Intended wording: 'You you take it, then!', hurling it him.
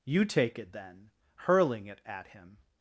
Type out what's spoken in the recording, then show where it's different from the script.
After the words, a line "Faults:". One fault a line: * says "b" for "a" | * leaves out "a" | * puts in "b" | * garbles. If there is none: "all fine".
'You take it, then!', hurling it at him.
Faults:
* leaves out "you"
* puts in "at"